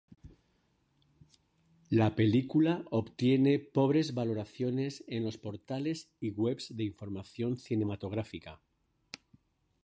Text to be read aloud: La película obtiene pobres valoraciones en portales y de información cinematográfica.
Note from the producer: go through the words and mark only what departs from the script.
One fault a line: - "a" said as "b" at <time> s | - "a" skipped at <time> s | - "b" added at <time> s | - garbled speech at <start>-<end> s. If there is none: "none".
- "los" added at 5.2 s
- "webs" added at 6.3 s